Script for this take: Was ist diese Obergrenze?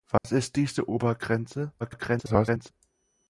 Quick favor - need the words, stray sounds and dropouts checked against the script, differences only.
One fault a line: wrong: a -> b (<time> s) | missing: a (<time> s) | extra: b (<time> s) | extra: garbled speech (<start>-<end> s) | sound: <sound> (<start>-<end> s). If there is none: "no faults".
sound: dropout (0.2-0.2 s)
extra: garbled speech (1.8-2.7 s)